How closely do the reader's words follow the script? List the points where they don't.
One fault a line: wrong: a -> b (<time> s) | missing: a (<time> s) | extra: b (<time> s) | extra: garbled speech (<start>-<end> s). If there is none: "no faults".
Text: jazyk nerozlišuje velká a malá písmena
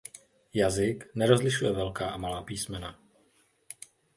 no faults